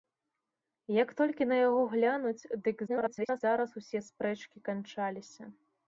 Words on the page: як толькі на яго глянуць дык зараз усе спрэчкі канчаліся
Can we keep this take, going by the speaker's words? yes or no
no